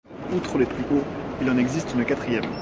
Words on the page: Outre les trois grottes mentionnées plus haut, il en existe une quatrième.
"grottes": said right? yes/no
no